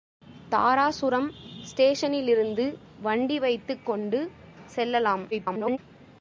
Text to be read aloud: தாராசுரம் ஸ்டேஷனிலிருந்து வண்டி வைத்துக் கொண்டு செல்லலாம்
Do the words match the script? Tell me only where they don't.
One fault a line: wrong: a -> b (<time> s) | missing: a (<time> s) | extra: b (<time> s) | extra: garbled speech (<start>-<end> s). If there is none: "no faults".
extra: garbled speech (5.3-5.8 s)